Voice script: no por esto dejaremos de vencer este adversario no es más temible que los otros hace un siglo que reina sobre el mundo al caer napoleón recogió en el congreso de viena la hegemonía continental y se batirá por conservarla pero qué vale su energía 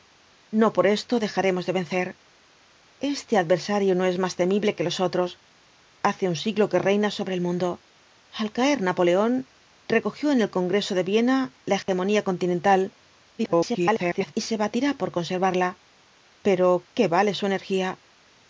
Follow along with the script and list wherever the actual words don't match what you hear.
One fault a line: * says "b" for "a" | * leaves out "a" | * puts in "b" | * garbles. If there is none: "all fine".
* garbles